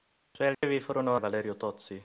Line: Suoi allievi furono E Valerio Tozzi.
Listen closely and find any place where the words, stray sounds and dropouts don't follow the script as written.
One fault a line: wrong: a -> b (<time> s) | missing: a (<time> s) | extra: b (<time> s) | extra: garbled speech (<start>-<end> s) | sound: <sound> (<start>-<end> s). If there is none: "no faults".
sound: dropout (0.5-0.6 s)